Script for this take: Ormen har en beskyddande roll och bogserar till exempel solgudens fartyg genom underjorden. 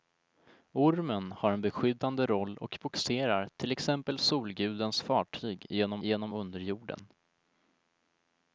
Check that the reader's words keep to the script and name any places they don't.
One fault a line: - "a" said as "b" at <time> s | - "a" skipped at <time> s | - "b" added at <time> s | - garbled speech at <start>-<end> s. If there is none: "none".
- "genom" added at 6.0 s